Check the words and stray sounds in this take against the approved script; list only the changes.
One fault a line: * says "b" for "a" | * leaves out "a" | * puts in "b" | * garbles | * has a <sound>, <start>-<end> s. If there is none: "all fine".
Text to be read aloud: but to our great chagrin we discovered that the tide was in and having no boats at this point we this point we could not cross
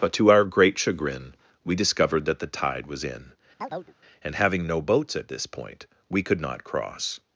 * has a chirp, 3.6-3.9 s
* leaves out "this point we"